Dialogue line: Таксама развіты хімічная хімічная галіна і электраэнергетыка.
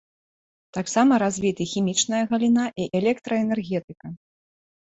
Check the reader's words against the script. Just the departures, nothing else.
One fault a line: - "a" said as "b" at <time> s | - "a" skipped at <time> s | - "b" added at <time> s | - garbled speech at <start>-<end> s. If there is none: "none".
- "хімічная" skipped at 2.2 s